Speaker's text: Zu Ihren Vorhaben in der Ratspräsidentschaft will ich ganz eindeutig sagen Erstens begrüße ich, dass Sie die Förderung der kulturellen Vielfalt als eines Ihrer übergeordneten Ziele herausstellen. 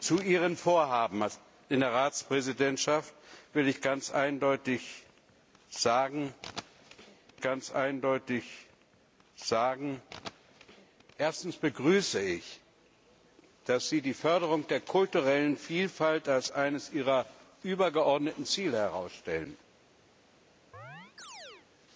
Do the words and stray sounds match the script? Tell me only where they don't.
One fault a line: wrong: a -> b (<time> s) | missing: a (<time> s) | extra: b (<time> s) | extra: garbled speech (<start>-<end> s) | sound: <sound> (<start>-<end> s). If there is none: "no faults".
extra: ganz eindeutig sagen (7.4 s)
sound: chirp (20.7-21.7 s)